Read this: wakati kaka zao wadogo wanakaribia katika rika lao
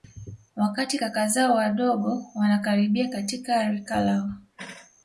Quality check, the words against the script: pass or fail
pass